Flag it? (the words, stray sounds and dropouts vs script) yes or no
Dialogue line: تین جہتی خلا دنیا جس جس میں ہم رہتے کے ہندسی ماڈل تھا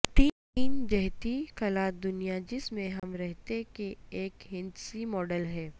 yes